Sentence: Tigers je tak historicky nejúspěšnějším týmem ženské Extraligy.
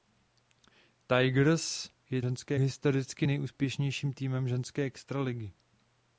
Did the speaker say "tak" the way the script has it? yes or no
no